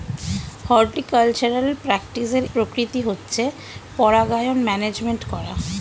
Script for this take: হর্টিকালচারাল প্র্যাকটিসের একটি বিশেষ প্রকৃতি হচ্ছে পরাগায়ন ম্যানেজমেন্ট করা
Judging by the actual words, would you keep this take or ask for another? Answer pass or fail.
fail